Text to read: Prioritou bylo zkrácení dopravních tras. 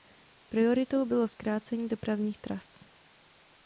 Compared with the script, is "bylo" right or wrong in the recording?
right